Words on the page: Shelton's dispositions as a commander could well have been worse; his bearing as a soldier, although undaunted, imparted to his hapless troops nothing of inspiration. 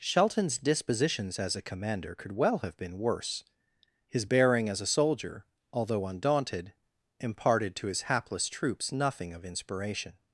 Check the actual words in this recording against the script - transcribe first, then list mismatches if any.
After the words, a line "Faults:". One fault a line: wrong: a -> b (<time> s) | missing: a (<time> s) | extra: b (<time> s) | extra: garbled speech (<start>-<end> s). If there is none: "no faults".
Shelton's dispositions as a commander could well have been worse; his bearing as a soldier, although undaunted, imparted to his hapless troops nothing of inspiration.
Faults:
no faults